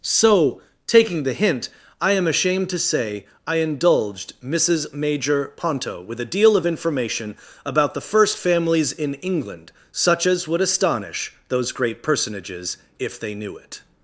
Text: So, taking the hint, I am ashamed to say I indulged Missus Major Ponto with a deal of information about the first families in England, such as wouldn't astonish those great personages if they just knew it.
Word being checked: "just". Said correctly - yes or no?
no